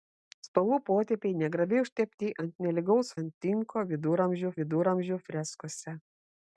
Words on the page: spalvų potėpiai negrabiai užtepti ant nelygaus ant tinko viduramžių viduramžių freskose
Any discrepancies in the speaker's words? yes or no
no